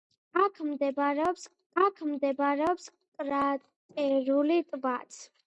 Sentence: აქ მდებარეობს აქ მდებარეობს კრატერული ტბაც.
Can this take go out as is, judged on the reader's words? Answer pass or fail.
pass